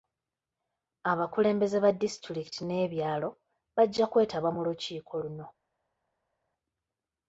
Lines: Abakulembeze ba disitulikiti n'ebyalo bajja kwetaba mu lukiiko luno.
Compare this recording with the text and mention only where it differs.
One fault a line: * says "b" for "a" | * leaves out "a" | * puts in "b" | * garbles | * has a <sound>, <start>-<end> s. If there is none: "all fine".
all fine